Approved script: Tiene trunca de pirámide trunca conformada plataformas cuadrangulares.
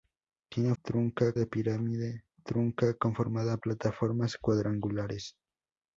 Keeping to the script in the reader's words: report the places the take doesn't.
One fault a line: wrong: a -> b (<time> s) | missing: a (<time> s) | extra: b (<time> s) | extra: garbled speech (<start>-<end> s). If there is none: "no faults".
no faults